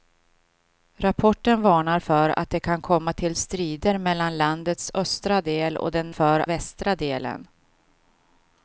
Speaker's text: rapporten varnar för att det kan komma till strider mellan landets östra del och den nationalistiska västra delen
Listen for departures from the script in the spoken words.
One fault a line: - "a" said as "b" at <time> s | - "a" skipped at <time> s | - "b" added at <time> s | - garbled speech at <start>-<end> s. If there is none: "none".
- "nationalistiska" said as "för" at 6.1 s